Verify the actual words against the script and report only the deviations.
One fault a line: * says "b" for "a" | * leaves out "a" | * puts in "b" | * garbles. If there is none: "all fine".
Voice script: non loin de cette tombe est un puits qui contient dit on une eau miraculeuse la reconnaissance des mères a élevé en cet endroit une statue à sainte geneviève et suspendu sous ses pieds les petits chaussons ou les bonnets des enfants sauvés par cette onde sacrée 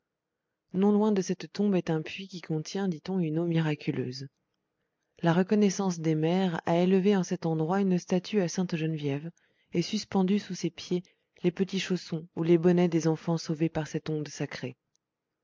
all fine